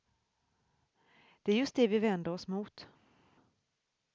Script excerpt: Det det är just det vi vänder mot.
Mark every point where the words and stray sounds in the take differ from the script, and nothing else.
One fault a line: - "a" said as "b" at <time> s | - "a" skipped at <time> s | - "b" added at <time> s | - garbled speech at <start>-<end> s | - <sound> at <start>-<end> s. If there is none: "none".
- "det" skipped at 1.5 s
- "oss" added at 2.3 s